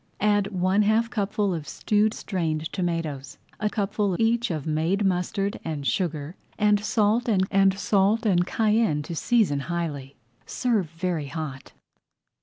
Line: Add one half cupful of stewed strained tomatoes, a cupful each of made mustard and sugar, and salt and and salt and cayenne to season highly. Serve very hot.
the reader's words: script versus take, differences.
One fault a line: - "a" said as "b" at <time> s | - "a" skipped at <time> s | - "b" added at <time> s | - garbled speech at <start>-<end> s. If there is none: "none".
none